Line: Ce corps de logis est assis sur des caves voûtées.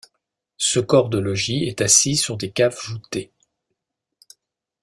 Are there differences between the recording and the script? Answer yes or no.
no